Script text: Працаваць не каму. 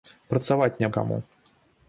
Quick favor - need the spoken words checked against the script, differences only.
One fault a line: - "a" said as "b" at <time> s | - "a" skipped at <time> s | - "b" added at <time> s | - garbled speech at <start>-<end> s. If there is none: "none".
none